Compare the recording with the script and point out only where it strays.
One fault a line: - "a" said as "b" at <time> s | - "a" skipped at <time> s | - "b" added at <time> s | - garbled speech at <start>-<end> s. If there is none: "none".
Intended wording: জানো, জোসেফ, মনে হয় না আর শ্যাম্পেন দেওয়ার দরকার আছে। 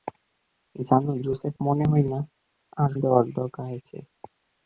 - "শ্যাম্পেন" skipped at 2.9 s